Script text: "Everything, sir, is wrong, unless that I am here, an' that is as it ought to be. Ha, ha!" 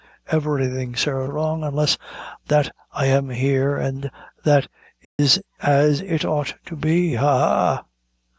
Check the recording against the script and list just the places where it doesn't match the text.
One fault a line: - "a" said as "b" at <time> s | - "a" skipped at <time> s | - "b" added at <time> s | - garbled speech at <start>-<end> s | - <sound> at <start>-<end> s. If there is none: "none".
- "is" skipped at 1.3 s
- dropout at 5.0-5.2 s